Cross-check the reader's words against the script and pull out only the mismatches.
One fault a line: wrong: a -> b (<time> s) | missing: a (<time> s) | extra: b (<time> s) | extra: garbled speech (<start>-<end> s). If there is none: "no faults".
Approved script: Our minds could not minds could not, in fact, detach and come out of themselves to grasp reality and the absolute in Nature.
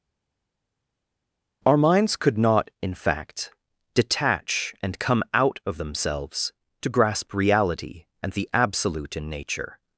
missing: minds could not (2.7 s)